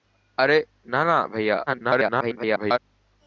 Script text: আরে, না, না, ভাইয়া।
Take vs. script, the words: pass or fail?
fail